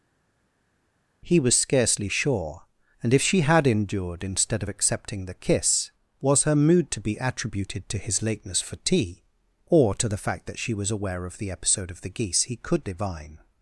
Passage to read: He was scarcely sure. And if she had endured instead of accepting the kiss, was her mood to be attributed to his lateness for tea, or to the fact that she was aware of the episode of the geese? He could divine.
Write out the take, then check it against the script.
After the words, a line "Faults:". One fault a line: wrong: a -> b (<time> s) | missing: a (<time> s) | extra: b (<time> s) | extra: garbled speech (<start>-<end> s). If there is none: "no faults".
He was scarcely sure. And if she had endured instead of accepting the kiss, was her mood to be attributed to his lateness for tea, or to the fact that she was aware of the episode of the geese? He could divine.
Faults:
no faults